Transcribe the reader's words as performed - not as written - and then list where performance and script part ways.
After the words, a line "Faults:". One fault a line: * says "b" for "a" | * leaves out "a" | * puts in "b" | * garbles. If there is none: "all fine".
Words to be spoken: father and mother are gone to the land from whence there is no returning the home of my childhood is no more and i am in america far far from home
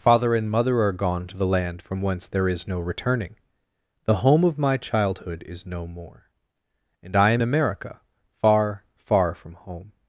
father and mother are gone to the land from whence there is no returning the home of my childhood is no more and i am america far far from home
Faults:
* leaves out "in"